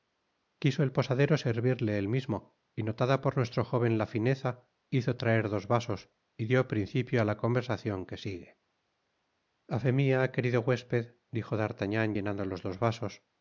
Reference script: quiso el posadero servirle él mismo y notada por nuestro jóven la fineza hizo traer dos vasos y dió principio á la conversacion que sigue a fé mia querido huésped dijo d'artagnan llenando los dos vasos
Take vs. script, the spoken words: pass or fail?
pass